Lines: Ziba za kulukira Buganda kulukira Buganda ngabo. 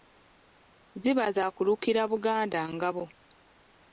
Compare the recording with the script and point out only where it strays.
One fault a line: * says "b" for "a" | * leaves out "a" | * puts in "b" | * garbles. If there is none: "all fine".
* leaves out "kulukira Buganda"